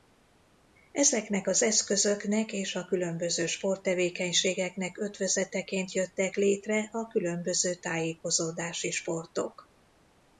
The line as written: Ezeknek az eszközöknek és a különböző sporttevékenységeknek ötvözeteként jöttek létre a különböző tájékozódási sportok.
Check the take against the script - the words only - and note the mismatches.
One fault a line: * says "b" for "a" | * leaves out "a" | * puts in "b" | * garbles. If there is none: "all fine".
all fine